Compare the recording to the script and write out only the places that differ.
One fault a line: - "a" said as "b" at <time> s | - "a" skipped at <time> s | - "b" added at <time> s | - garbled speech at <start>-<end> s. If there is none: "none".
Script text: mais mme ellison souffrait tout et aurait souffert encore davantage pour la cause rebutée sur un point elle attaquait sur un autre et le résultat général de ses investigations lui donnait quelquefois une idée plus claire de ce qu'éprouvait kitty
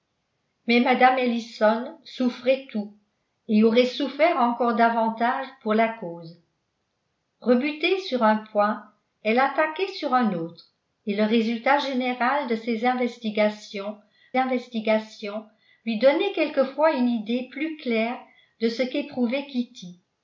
- "investigations" added at 14.4 s